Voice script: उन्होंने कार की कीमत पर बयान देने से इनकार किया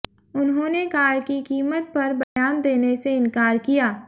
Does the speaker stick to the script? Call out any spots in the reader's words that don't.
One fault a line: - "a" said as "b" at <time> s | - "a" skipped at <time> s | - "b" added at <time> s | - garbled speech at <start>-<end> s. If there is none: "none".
none